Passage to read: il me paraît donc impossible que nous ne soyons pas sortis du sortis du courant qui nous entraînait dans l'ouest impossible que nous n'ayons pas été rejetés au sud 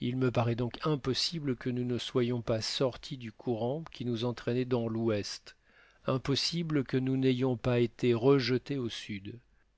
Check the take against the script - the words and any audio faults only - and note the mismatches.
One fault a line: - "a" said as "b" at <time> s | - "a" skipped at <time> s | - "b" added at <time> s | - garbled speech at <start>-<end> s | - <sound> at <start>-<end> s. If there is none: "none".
- "sortis du" skipped at 3.3 s